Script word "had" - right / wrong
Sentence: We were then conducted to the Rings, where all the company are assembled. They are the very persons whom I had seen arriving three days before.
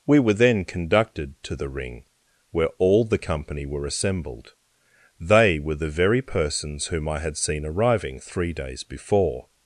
right